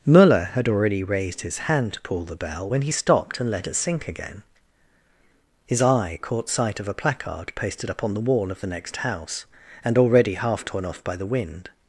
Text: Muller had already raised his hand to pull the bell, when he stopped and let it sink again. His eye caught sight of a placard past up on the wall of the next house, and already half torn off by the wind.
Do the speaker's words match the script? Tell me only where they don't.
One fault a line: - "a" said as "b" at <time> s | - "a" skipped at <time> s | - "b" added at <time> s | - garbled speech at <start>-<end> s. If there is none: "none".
- "past" said as "pasted" at 7.6 s